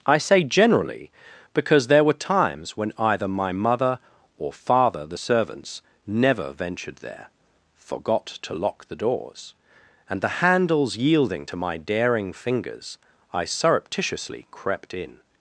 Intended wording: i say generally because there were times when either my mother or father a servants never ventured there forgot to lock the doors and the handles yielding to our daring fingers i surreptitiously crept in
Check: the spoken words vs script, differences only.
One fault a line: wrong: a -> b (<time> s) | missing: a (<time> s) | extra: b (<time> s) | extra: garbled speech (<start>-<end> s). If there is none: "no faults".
wrong: a -> the (5.0 s)
wrong: our -> my (11.5 s)